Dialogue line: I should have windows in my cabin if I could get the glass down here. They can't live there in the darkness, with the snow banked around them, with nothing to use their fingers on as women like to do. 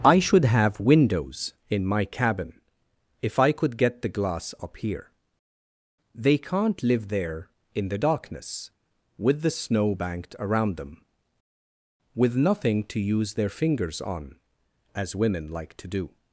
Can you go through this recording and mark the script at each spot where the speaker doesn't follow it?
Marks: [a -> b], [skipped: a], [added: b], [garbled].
I should have windows in my cabin if I could get the glass [down -> up] here. They can't live there in the darkness, with the snow banked around them, with nothing to use their fingers on as women like to do.